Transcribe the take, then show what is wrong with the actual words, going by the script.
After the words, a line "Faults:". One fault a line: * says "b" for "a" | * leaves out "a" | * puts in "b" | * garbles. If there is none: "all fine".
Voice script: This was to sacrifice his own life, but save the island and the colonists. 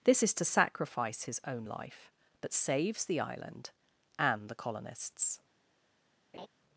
This is to sacrifice his own life, but saves the island and the colonists.
Faults:
* says "is" for "was"
* says "saves" for "save"